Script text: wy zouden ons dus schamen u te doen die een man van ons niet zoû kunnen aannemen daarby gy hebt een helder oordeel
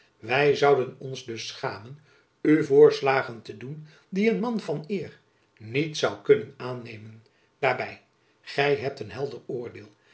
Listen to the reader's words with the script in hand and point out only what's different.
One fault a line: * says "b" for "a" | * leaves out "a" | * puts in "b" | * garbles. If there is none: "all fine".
* puts in "voorslagen"
* says "eer" for "ons"